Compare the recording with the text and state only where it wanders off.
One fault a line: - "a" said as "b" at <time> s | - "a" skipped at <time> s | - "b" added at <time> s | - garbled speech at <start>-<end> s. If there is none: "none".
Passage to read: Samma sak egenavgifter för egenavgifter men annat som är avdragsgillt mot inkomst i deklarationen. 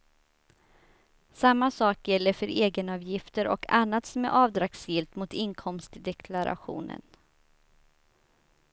- "egenavgifter" said as "gäller" at 2.1 s
- "men" said as "och" at 3.5 s